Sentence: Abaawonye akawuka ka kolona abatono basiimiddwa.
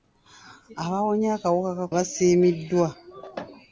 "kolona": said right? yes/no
no